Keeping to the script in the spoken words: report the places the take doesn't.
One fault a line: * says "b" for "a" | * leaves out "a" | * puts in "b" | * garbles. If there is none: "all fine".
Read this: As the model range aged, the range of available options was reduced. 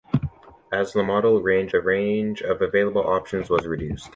* leaves out "aged"